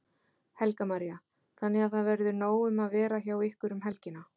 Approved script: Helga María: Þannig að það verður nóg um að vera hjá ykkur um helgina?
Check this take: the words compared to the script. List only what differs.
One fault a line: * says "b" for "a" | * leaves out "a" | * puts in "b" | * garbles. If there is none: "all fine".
all fine